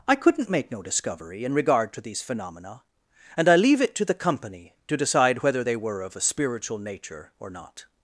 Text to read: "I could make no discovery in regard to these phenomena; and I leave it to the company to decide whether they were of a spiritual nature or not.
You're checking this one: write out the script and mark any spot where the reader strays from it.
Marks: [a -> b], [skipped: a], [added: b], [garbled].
"I [could -> couldn't] make no discovery in regard to these phenomena; and I leave it to the company to decide whether they were of a spiritual nature or not.